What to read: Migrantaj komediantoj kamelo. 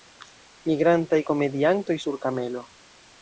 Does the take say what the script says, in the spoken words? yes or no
no